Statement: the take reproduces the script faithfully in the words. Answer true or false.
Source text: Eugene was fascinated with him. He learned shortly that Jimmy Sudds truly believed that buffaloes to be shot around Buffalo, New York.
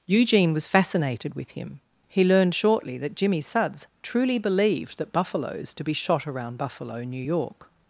true